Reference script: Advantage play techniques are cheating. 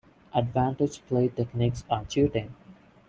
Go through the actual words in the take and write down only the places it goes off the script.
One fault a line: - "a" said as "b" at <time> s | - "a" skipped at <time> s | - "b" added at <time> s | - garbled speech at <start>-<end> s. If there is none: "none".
none